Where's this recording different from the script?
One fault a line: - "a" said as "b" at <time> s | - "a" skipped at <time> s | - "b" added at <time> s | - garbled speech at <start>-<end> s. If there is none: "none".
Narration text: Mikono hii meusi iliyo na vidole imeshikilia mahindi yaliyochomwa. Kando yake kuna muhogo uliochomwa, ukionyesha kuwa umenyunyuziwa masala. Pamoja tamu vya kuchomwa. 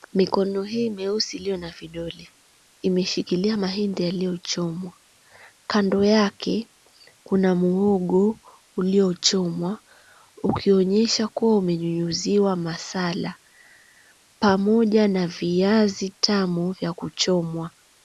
- "na viazi" added at 15.1 s